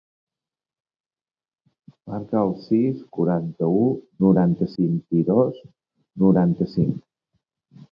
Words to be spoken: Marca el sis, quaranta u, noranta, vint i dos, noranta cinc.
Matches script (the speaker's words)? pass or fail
pass